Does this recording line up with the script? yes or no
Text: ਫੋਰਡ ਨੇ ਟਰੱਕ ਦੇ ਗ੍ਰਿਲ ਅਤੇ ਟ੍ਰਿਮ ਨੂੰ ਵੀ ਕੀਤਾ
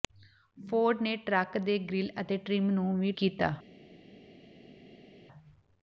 yes